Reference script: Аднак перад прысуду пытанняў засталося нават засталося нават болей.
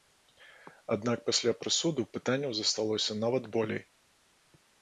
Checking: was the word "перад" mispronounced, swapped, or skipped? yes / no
yes